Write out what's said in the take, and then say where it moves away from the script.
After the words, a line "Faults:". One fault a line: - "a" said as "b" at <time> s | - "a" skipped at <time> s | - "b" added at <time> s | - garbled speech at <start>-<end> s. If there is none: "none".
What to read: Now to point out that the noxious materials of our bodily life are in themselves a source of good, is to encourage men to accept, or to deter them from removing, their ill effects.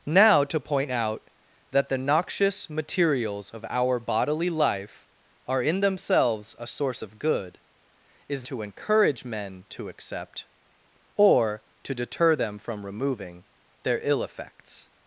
Now to point out that the noxious materials of our bodily life are in themselves a source of good, is to encourage men to accept, or to deter them from removing, their ill effects.
Faults:
none